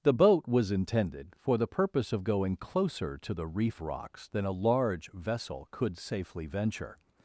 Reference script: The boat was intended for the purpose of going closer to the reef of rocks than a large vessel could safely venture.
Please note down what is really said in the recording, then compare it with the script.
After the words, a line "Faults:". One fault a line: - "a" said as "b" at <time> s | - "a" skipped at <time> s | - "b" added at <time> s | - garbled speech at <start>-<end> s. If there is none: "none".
The boat was intended for the purpose of going closer to the reef rocks than a large vessel could safely venture.
Faults:
- "of" skipped at 3.8 s